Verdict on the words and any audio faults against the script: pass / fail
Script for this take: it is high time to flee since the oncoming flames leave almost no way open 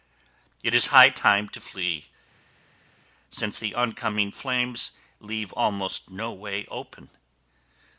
pass